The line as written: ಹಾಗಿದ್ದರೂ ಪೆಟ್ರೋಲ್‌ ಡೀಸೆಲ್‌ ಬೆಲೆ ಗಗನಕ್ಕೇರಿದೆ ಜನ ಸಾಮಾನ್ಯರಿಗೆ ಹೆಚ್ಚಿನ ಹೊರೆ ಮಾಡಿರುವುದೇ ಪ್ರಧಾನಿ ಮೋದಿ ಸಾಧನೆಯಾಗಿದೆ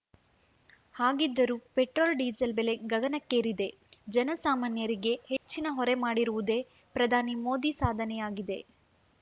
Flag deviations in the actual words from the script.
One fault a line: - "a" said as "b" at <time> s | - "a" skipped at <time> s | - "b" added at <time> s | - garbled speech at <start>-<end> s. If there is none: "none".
none